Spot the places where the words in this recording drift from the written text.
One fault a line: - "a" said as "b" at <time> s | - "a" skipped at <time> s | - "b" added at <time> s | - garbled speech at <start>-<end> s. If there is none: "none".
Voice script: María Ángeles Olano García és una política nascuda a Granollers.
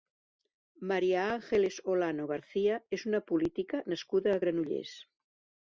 none